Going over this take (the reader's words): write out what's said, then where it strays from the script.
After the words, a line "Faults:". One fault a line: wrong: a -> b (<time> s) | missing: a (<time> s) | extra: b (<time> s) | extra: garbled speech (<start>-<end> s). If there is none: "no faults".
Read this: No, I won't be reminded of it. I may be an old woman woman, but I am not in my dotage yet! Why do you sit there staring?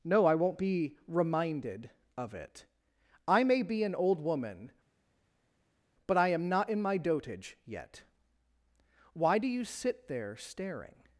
No, I won't be reminded of it. I may be an old woman, but I am not in my dotage yet! Why do you sit there staring?
Faults:
missing: woman (4.7 s)